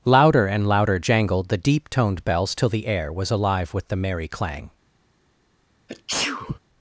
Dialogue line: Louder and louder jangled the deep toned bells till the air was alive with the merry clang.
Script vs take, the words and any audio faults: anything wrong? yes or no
yes